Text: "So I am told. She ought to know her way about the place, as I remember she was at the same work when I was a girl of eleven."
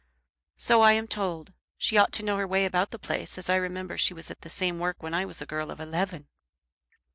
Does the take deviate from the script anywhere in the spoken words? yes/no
no